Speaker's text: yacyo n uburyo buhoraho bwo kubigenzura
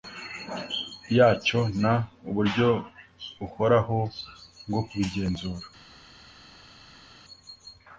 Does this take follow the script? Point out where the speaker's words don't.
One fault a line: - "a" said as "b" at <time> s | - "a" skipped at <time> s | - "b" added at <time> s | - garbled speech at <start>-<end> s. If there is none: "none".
none